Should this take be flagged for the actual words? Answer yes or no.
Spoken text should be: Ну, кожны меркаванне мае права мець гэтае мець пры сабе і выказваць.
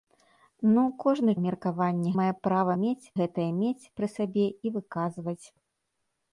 no